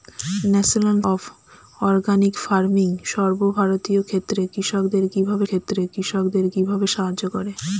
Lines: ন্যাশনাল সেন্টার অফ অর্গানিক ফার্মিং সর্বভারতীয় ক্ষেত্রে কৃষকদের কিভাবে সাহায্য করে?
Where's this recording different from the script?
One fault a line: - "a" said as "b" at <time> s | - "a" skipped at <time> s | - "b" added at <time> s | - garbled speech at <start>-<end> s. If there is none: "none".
- "সেন্টার" skipped at 1.0 s
- "ক্ষেত্রে কৃষকদের কিভাবে" added at 5.5 s